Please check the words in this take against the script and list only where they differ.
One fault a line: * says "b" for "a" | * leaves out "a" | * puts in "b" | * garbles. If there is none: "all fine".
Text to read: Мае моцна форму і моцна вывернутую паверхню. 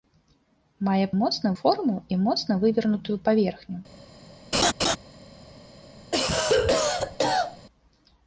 all fine